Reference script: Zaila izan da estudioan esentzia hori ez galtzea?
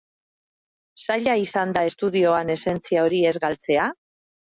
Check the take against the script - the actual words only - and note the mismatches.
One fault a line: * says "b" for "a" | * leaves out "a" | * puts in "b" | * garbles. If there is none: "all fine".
all fine